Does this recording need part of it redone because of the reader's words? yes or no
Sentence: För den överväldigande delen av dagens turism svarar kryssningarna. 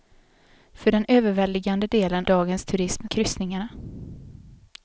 yes